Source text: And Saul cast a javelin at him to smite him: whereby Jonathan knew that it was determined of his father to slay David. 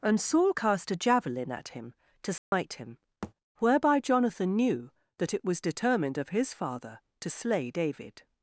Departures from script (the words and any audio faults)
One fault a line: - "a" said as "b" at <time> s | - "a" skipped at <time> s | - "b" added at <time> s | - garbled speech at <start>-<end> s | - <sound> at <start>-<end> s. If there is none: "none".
- dropout at 2.4-2.5 s
- thud at 3.2-3.3 s